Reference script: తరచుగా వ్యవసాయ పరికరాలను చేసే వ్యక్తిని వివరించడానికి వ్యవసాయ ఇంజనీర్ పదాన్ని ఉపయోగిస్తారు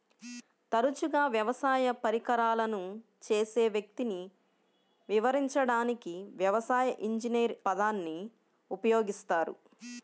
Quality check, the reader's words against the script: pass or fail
pass